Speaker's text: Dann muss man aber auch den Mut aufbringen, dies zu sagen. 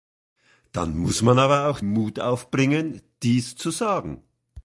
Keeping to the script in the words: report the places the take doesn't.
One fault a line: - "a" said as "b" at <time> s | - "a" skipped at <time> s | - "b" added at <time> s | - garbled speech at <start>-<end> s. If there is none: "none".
- "den" skipped at 1.8 s